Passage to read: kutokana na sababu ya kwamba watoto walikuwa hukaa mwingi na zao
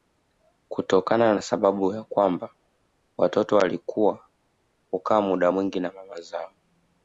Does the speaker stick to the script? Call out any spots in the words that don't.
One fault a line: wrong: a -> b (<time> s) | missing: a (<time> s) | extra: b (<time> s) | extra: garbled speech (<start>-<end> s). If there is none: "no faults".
extra: muda (5.2 s)
extra: mama (5.9 s)